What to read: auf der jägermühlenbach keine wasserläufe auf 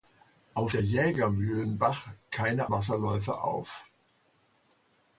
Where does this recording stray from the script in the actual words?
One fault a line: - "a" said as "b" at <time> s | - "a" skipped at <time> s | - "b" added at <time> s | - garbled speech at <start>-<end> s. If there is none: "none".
none